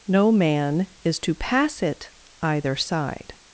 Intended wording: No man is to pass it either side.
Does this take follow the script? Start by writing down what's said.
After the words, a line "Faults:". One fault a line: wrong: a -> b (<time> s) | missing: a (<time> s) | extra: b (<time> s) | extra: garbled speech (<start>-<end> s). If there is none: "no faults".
No man is to pass it either side.
Faults:
no faults